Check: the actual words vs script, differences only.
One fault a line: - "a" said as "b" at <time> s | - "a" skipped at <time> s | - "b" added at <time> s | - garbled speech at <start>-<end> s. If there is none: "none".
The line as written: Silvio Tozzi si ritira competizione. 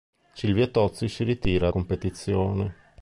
none